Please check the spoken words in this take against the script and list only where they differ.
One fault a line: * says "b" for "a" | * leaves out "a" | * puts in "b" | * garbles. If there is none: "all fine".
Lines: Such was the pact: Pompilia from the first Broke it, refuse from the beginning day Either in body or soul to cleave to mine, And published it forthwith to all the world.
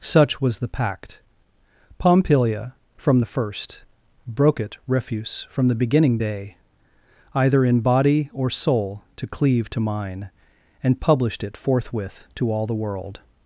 all fine